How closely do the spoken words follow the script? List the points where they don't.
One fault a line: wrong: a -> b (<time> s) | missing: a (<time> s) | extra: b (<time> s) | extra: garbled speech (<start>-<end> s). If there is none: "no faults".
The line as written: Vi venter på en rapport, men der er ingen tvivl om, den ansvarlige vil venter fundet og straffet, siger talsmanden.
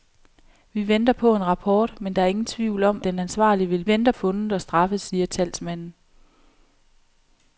no faults